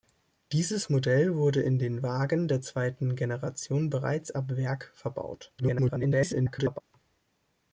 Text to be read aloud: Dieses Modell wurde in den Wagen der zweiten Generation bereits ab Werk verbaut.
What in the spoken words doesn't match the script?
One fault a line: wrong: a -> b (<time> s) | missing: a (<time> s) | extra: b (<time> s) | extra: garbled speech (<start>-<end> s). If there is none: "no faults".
extra: garbled speech (5.6-6.8 s)